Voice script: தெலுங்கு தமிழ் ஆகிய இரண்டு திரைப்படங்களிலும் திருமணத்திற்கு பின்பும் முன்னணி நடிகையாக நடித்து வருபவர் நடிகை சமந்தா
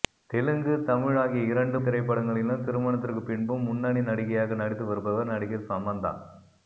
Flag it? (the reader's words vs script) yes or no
no